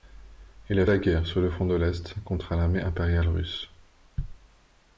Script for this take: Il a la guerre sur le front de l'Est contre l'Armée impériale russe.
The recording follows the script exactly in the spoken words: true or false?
true